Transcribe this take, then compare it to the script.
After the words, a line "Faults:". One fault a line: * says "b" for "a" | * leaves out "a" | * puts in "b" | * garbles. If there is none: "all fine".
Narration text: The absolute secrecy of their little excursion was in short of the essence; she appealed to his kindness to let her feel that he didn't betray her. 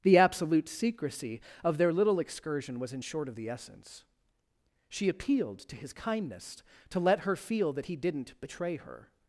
The absolute secrecy of their little excursion was in short of the essence; she appealed to his kindness to let her feel that he didn't betray her.
Faults:
all fine